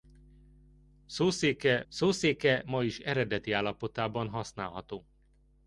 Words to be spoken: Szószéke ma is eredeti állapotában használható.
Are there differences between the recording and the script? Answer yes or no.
yes